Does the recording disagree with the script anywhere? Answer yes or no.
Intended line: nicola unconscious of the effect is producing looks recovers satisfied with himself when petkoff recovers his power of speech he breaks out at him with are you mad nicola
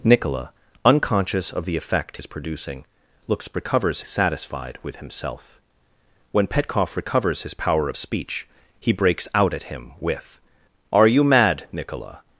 no